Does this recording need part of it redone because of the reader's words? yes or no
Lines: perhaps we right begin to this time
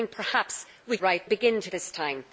no